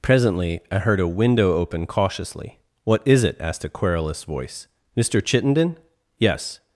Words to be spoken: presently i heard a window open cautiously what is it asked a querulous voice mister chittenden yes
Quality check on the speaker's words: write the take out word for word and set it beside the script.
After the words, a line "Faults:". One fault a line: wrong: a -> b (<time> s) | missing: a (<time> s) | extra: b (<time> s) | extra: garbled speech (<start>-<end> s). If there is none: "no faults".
presently i heard a window open cautiously what is it asked a querulous voice mister chittenden yes
Faults:
no faults